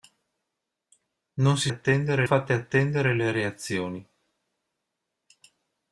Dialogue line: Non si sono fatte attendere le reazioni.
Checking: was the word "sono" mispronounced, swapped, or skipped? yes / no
yes